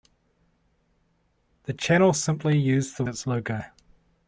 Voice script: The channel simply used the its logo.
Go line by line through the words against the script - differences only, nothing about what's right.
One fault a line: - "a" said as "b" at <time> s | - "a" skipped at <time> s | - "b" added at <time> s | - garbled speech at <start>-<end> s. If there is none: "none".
none